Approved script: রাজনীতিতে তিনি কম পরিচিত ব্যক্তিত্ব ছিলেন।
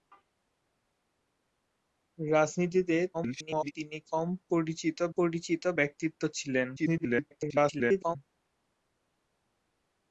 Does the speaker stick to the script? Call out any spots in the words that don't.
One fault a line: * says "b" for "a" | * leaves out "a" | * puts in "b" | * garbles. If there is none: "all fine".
* garbles
* puts in "পরিচিত"
* garbles